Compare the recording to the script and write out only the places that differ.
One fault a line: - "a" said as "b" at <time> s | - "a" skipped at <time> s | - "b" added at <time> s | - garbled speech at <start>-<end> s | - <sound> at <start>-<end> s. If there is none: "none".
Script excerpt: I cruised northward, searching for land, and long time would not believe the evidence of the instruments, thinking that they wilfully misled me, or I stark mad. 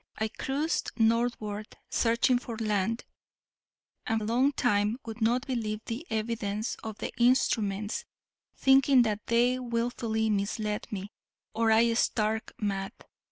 none